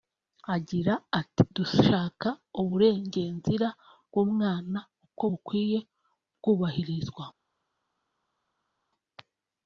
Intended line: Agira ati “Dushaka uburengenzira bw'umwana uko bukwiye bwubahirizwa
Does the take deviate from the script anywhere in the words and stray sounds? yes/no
no